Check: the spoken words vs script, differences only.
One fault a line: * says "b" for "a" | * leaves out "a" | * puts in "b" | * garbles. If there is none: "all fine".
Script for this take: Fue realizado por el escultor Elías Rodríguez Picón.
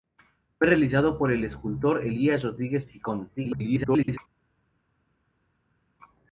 * garbles